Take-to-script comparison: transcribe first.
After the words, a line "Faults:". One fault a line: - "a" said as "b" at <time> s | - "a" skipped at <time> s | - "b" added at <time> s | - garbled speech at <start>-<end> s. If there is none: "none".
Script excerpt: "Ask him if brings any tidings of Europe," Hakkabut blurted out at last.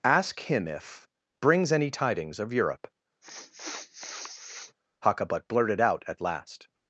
"Ask him if brings any tidings of Europe," Hakkabut blurted out at last.
Faults:
none